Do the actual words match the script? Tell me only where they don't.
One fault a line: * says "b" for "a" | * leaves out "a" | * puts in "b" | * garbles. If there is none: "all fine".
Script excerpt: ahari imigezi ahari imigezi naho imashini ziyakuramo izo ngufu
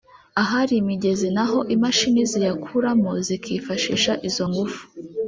* leaves out "ahari imigezi"
* puts in "zikifashisha"